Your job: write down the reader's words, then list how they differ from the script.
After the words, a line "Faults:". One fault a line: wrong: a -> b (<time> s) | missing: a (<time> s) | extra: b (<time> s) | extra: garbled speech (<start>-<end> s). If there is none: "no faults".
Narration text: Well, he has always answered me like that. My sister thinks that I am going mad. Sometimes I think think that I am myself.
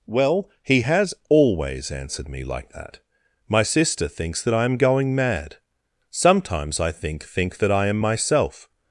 Well, he has always answered me like that. My sister thinks that I am going mad. Sometimes I think think that I am myself.
Faults:
no faults